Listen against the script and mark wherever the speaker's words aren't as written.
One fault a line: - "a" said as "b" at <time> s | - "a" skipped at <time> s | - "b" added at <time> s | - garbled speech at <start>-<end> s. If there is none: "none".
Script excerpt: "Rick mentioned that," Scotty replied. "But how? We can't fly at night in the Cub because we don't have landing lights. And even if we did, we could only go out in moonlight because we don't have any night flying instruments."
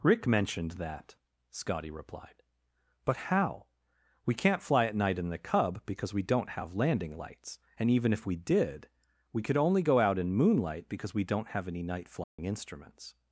none